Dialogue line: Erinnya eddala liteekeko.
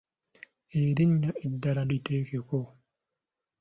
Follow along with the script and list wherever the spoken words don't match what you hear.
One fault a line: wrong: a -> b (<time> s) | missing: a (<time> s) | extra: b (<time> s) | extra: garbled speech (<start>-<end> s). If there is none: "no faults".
no faults